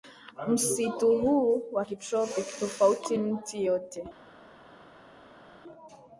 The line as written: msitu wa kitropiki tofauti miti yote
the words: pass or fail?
fail